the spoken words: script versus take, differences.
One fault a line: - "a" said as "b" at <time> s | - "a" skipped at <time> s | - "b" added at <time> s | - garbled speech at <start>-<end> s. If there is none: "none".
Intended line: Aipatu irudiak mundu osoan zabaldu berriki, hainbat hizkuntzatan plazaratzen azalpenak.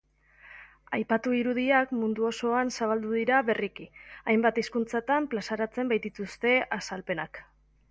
- "dira" added at 3.2 s
- "baitituzte" added at 6.0 s